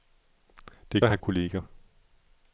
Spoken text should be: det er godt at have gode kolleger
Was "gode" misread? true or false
true